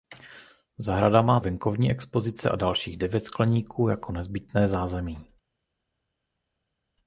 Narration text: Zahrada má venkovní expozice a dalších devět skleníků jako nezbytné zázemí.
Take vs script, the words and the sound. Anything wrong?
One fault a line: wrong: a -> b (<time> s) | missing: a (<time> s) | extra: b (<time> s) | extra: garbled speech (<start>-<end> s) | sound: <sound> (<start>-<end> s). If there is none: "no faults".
no faults